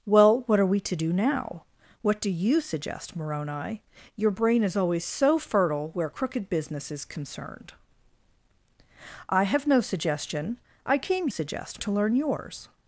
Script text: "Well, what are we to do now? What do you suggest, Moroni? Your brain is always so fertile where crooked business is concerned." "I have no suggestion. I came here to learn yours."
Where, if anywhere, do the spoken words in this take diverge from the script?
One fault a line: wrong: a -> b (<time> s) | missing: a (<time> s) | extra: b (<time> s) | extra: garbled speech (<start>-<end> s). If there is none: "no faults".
wrong: here -> suggest (11.3 s)